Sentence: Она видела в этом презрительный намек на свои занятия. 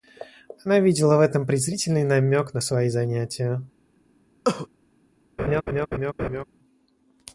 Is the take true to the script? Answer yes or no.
yes